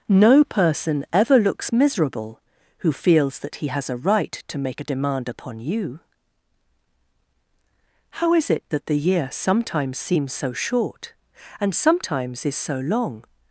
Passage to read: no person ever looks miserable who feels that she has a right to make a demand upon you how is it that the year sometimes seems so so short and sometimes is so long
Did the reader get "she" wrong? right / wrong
wrong